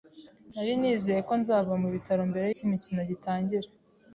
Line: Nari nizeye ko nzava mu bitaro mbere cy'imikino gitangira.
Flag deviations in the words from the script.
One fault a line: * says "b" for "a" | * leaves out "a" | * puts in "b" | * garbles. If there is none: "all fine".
all fine